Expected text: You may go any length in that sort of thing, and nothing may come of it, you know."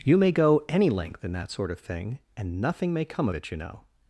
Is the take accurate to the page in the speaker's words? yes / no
no